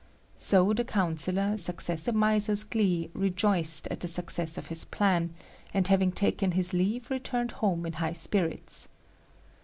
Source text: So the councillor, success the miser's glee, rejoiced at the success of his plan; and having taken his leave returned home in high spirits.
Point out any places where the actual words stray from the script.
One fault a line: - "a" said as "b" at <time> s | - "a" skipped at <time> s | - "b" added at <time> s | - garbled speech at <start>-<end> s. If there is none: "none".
none